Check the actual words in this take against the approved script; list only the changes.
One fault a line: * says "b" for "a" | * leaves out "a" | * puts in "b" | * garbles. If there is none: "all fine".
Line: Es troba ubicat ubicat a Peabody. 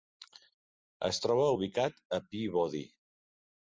* leaves out "ubicat"